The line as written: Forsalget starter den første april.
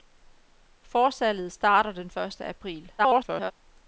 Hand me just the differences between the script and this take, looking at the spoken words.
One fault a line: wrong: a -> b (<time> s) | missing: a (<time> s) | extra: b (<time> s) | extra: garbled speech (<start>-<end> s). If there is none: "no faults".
extra: garbled speech (3.0-3.5 s)